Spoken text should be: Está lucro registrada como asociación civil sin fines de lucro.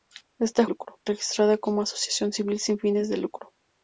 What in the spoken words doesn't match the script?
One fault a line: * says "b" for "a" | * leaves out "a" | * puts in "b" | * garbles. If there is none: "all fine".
all fine